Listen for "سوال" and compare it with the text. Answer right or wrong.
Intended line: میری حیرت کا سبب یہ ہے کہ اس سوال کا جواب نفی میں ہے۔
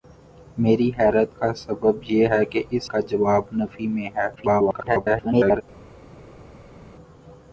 wrong